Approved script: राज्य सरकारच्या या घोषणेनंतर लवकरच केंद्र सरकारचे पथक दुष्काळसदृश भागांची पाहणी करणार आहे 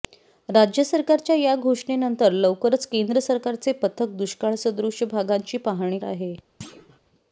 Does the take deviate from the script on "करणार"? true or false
true